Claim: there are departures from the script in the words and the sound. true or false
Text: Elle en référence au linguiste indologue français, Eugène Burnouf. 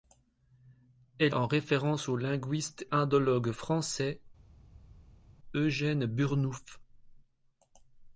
false